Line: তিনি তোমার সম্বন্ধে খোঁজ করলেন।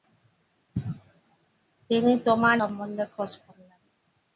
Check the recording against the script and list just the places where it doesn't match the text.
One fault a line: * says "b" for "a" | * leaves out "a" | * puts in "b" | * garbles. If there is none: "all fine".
all fine